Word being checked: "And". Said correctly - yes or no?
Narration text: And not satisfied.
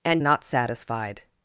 yes